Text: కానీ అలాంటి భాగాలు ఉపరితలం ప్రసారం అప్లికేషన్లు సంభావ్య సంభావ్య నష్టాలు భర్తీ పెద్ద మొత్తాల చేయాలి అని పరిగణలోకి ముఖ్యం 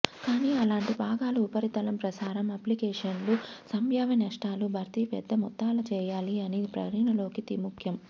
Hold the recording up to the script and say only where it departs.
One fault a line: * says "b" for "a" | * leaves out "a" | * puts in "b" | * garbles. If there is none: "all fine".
* leaves out "సంభావ్య"